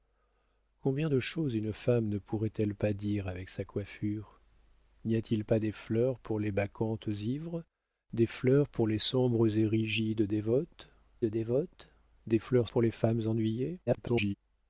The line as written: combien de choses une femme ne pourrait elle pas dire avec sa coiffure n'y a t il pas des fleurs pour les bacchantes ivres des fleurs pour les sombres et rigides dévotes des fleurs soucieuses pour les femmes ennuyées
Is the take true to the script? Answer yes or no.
no